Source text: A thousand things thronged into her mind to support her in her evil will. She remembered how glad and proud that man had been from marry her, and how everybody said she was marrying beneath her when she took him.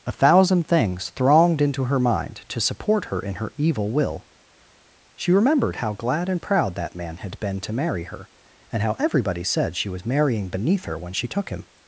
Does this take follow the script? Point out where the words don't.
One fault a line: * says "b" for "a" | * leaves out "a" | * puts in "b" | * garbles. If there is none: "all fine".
* says "to" for "from"